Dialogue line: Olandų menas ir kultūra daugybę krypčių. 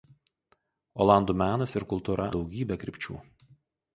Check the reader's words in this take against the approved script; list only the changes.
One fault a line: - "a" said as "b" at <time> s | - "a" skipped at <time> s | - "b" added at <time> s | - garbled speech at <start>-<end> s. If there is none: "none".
none